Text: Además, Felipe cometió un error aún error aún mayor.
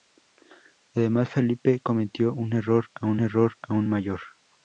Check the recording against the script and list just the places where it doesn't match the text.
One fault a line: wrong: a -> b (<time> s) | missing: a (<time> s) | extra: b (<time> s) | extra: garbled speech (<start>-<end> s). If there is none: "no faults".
no faults